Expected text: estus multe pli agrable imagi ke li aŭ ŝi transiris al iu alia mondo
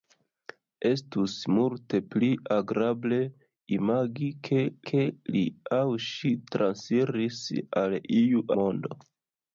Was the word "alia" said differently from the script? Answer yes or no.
yes